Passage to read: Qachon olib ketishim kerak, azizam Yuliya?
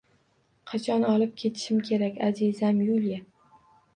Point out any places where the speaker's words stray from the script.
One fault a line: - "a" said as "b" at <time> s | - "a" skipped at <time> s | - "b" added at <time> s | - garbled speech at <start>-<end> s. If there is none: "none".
none